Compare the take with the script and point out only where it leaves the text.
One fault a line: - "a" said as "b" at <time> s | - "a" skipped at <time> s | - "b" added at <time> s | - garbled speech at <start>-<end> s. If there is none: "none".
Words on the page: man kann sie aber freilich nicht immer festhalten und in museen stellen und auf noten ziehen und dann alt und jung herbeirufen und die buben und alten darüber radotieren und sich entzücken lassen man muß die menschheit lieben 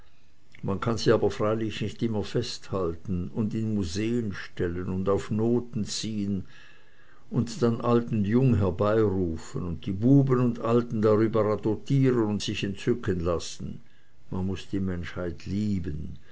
none